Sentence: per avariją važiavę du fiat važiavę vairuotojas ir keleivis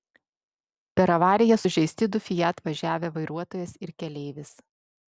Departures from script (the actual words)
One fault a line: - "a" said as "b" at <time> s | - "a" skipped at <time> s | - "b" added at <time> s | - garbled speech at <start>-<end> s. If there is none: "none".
- "važiavę" said as "sužeisti" at 1.6 s